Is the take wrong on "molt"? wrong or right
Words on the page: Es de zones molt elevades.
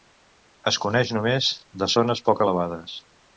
wrong